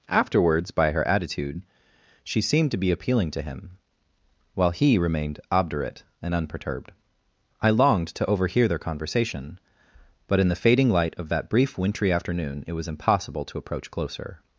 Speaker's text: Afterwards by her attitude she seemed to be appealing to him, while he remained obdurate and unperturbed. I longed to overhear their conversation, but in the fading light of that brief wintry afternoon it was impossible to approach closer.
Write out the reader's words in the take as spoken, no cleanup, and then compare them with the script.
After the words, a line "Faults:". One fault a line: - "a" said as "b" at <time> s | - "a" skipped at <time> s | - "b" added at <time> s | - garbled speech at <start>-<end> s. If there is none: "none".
Afterwards by her attitude she seemed to be appealing to him, while he remained obdurate and unperturbed. I longed to overhear their conversation, but in the fading light of that brief wintry afternoon it was impossible to approach closer.
Faults:
none